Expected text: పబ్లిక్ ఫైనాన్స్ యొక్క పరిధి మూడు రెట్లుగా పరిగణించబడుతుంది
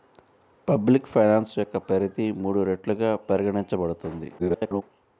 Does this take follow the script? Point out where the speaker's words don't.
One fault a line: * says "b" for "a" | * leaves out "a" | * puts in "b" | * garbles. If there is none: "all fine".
* garbles